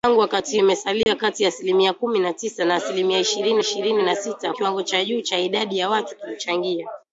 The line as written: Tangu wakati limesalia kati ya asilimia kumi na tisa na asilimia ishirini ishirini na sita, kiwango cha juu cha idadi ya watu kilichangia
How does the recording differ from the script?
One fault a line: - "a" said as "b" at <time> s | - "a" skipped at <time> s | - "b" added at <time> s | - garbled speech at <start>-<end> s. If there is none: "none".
none